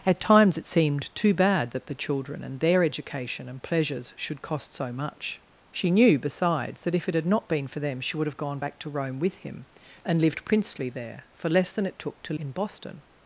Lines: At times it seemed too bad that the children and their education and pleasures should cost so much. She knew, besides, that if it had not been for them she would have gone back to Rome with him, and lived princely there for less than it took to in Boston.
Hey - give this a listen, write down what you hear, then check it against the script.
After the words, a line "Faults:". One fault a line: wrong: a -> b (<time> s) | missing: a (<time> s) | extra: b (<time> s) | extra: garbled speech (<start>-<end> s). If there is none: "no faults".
At times it seemed too bad that the children and their education and pleasures should cost so much. She knew, besides, that if it had not been for them she would have gone back to Rome with him, and lived princely there for less than it took to in Boston.
Faults:
no faults